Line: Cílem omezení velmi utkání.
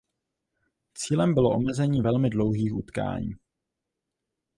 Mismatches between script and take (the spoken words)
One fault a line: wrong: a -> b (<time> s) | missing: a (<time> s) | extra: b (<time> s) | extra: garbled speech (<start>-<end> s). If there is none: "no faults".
extra: bylo (1.3 s)
extra: dlouhých (2.3 s)